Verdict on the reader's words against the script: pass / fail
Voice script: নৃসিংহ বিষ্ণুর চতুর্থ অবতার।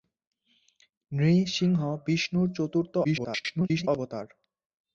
fail